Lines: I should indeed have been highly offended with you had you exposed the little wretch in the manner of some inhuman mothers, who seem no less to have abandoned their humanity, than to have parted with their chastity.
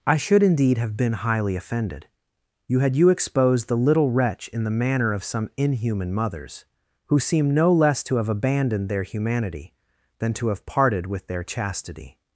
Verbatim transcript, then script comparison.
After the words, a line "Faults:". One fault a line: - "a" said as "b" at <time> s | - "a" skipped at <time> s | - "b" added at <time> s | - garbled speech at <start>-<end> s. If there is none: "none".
I should indeed have been highly offended you had you exposed the little wretch in the manner of some inhuman mothers, who seem no less to have abandoned their humanity, than to have parted with their chastity.
Faults:
- "with" skipped at 2.1 s